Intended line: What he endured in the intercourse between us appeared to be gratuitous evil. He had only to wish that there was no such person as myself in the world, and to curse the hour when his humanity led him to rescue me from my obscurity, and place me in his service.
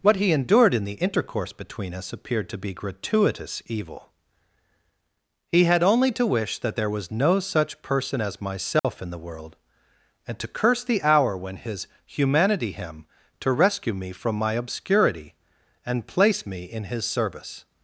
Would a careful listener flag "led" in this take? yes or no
yes